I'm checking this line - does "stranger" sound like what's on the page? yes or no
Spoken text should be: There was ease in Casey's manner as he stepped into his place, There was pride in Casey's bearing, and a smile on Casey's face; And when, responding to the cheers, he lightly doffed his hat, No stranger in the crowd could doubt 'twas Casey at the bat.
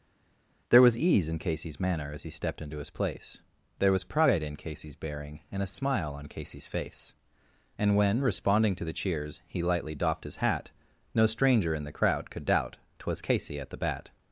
yes